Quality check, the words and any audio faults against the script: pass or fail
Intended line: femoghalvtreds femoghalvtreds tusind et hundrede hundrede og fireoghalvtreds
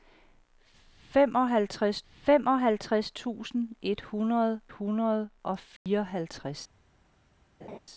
fail